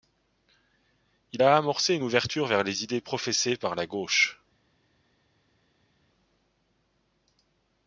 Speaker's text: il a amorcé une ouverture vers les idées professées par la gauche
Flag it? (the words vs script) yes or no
no